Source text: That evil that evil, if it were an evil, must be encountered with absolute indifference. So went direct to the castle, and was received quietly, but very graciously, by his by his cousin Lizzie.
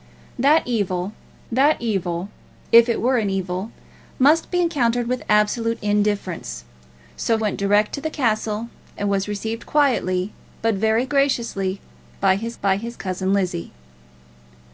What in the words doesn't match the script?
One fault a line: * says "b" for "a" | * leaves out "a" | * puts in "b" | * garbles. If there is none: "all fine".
all fine